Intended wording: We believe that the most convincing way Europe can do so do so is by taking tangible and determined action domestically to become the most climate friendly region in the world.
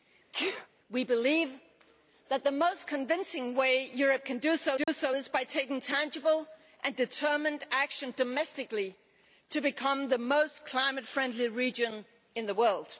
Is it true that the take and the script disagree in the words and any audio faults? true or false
true